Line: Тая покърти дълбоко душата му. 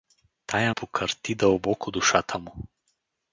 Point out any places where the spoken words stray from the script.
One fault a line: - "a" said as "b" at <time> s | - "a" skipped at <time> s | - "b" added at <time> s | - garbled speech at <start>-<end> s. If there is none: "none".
none